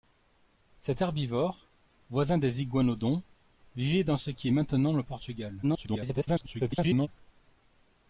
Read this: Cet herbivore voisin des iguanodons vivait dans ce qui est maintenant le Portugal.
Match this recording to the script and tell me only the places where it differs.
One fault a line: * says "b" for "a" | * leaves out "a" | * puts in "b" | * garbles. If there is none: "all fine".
* garbles